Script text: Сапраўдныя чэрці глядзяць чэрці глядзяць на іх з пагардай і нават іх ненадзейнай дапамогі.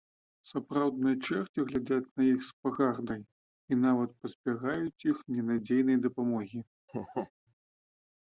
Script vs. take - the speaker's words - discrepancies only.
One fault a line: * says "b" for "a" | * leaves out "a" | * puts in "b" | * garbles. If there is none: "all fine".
* leaves out "чэрці глядзяць"
* puts in "пазбягаюць"